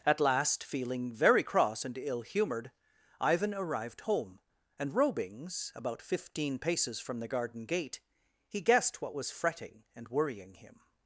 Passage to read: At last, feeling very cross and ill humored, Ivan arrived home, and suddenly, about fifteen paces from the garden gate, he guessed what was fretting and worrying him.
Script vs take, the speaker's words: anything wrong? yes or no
yes